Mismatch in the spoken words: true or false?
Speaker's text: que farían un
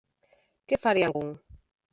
false